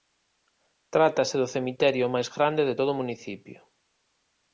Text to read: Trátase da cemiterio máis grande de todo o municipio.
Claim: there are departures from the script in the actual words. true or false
true